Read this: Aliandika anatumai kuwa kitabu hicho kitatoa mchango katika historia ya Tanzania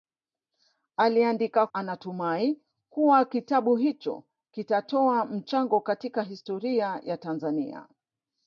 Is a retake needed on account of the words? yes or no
no